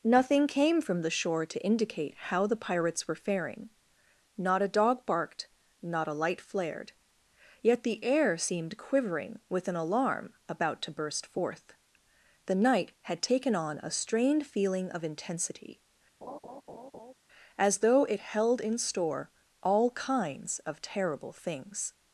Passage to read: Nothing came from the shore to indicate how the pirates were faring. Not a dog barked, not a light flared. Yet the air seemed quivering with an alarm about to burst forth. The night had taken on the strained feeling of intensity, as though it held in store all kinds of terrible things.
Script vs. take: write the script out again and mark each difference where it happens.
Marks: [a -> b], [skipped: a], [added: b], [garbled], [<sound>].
Nothing came from the shore to indicate how the pirates were faring. Not a dog barked, not a light flared. Yet the air seemed quivering with an alarm about to burst forth. The night had taken on [the -> a] strained feeling of intensity, [laugh] as though it held in store all kinds of terrible things.